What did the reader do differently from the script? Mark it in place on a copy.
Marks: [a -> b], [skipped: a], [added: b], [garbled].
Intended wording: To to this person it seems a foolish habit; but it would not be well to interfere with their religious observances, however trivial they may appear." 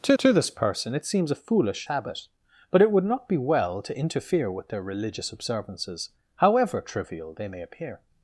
To to this person it seems a foolish habit; but it would not be well to interfere with their religious observances, however trivial they may appear."